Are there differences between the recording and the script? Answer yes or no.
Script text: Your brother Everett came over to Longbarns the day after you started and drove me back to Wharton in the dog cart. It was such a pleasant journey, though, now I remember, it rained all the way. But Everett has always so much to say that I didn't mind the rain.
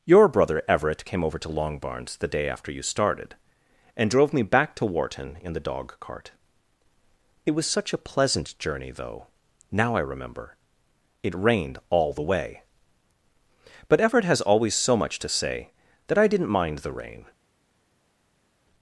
no